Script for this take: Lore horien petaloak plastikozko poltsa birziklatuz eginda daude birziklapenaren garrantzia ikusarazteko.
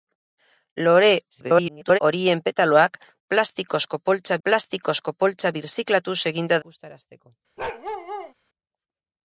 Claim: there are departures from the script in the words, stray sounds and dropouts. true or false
true